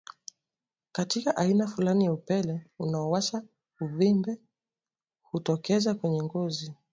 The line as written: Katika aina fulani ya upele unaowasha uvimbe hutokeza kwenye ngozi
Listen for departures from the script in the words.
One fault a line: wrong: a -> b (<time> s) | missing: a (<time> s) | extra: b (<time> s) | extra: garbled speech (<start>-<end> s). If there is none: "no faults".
no faults